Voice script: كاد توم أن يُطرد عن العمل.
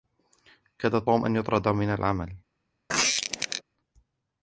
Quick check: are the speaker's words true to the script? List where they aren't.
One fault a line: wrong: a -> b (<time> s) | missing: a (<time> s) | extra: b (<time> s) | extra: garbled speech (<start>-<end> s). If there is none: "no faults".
wrong: عن -> من (1.7 s)